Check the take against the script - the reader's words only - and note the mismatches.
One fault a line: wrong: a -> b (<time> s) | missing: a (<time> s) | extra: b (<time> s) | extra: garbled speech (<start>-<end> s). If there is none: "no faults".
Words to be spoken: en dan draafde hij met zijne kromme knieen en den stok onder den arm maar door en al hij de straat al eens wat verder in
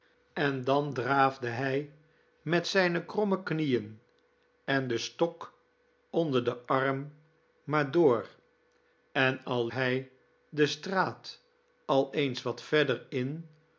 no faults